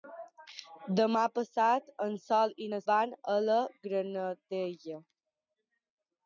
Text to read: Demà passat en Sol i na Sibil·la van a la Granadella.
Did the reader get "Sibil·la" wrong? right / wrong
wrong